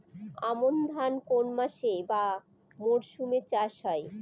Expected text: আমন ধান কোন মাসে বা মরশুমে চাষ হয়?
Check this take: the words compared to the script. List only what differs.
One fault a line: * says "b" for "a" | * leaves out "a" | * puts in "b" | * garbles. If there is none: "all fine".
all fine